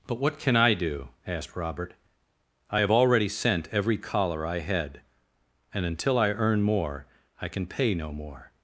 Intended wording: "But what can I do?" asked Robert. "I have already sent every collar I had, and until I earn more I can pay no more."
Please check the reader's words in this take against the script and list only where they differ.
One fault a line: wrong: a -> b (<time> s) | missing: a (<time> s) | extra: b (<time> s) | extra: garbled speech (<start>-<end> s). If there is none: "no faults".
no faults